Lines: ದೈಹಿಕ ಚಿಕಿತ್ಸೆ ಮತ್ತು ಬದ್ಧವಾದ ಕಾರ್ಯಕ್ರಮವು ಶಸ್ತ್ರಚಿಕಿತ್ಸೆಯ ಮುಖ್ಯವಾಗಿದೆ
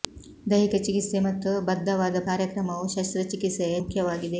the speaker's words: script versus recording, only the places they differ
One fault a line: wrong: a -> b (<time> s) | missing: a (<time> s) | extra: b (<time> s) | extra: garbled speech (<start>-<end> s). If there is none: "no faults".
no faults